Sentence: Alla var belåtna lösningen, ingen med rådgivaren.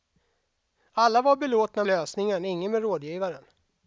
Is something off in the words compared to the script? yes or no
no